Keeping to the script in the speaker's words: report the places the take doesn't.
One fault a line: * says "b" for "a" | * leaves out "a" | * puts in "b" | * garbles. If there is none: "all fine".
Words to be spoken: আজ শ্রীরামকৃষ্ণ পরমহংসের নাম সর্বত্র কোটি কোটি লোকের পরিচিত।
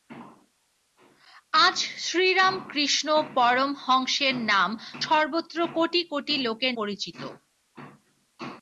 all fine